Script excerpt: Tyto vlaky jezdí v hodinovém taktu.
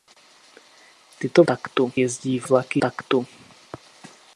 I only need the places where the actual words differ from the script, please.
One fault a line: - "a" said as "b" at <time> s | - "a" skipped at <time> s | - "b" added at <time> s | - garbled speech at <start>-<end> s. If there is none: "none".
- "vlaky" said as "taktu" at 1.5 s
- "hodinovém" said as "vlaky" at 2.4 s